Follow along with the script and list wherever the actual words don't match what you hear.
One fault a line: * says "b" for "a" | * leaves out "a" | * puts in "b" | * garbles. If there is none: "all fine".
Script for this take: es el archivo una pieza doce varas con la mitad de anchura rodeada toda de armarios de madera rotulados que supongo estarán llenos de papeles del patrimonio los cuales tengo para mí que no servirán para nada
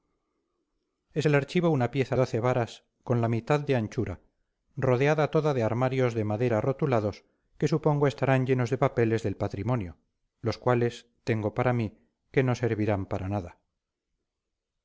all fine